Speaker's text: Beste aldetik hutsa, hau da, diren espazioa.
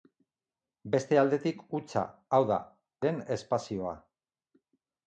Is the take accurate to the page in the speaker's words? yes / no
yes